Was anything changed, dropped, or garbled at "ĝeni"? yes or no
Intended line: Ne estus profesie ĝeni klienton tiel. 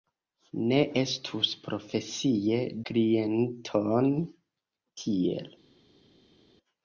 yes